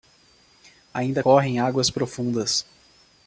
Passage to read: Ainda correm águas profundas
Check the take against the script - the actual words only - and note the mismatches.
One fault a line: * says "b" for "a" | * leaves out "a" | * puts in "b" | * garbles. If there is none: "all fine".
all fine